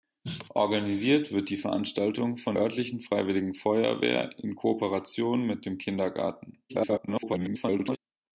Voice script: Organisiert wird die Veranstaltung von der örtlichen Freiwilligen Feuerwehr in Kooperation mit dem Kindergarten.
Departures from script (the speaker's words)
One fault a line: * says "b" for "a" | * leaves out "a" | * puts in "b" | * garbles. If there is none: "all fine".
* leaves out "der"
* garbles